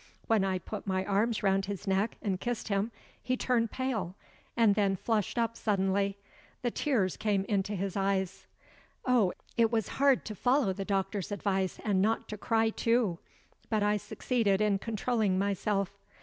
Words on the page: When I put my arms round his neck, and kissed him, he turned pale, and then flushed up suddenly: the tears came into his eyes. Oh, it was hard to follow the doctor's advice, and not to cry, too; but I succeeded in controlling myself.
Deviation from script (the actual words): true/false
false